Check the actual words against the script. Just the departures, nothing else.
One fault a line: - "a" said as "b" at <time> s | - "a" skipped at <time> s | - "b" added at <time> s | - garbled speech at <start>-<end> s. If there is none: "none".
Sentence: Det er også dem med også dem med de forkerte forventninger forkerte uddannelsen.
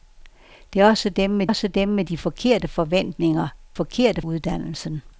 none